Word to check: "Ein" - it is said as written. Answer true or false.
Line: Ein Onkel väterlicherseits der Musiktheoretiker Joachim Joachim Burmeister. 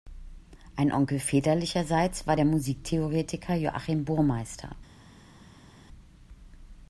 true